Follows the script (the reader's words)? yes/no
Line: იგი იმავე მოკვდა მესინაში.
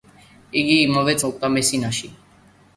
yes